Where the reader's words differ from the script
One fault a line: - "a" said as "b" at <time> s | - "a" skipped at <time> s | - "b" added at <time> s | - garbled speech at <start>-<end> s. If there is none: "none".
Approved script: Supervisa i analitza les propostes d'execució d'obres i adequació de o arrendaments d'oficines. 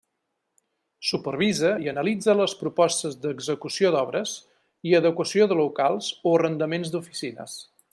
- "locals" added at 5.6 s